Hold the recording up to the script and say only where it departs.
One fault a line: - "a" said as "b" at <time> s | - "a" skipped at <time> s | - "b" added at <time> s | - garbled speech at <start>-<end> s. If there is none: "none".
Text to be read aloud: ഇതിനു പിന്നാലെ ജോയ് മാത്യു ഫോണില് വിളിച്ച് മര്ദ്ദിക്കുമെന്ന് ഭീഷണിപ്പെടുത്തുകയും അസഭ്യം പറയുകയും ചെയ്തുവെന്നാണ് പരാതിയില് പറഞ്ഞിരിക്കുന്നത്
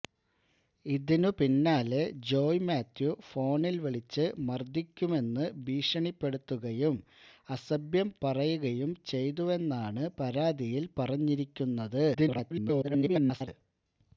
- garbled speech at 12.1-13.5 s